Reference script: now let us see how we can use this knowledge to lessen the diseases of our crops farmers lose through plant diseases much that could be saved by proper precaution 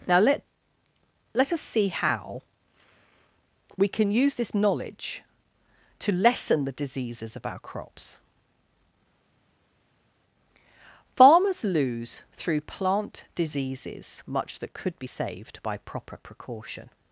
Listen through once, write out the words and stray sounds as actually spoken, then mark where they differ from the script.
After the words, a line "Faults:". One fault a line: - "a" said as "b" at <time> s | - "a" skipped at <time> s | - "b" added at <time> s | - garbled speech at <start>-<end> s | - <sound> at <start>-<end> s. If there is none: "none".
now let let us see how we can use this knowledge to lessen the diseases of our crops farmers lose through plant diseases much that could be saved by proper precaution
Faults:
- "let" added at 1.3 s